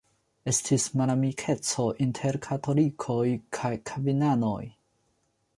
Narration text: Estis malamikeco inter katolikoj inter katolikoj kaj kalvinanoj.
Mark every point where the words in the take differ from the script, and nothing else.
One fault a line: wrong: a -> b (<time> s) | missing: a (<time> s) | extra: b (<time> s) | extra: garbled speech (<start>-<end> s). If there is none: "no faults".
missing: inter katolikoj (3.3 s)